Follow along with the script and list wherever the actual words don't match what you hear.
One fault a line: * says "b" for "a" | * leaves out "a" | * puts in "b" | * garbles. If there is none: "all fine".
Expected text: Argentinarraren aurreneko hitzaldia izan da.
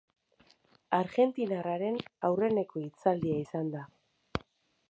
all fine